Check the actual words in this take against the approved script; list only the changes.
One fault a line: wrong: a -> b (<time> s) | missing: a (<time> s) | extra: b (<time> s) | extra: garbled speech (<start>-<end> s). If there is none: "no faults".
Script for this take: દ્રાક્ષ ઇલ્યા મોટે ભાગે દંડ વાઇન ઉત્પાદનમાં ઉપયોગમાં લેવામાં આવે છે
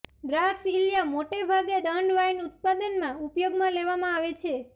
no faults